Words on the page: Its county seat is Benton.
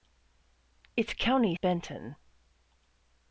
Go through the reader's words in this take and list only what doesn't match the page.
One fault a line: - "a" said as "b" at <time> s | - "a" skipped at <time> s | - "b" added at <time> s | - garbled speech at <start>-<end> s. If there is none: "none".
- "seat is" skipped at 1.6 s